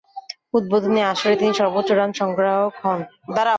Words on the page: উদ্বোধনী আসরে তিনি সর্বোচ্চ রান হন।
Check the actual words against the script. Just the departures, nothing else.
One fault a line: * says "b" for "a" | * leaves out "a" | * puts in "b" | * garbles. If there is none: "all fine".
* puts in "সংগ্রাহক"